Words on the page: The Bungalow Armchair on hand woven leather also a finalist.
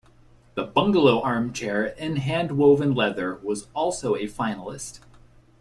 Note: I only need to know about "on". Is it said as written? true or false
false